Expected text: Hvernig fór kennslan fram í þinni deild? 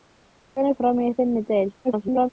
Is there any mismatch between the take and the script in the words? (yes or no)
yes